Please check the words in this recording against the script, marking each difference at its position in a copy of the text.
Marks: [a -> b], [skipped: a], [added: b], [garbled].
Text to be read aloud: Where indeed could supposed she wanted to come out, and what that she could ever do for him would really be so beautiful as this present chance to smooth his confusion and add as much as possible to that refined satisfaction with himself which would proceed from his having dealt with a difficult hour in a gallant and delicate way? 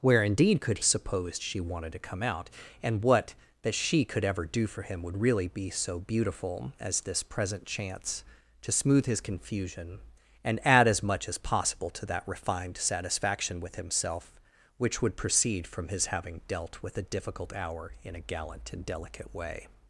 Where indeed could supposed she wanted to come out, and what that she could ever do for him would really be so beautiful as this present chance to smooth his confusion and add as much as possible to that refined satisfaction with himself which would proceed from his having dealt with a difficult hour in a gallant and delicate way?